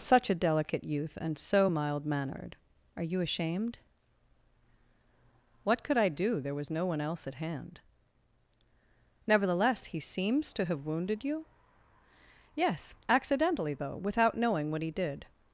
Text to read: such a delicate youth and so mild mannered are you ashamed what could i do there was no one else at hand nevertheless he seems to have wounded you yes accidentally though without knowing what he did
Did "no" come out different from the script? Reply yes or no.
no